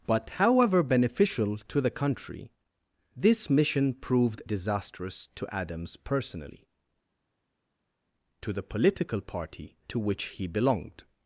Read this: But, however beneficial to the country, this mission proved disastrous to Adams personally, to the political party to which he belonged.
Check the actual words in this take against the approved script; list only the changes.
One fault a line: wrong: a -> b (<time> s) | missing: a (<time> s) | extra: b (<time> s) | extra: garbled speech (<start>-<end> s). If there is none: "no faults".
no faults